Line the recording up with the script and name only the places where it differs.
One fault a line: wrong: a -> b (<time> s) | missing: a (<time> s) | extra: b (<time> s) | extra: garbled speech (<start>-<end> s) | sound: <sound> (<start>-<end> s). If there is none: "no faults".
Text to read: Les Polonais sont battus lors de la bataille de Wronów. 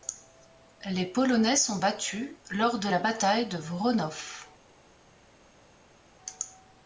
no faults